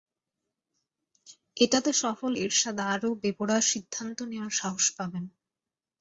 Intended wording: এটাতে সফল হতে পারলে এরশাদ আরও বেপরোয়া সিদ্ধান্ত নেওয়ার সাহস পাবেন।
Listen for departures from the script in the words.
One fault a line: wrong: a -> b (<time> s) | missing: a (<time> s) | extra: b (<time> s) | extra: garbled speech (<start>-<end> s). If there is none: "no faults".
missing: হতে পারলে (2.3 s)